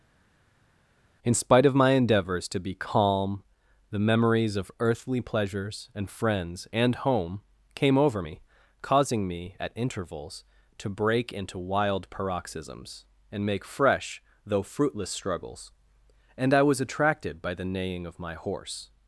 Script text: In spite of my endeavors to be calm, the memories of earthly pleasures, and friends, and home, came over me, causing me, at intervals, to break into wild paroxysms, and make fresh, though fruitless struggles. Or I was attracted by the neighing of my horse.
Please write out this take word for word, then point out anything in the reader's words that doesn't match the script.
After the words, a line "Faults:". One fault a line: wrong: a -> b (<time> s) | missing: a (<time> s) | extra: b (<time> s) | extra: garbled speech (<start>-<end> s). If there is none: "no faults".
In spite of my endeavors to be calm, the memories of earthly pleasures, and friends, and home, came over me, causing me, at intervals, to break into wild paroxysms, and make fresh, though fruitless struggles. And I was attracted by the neighing of my horse.
Faults:
wrong: Or -> And (16.4 s)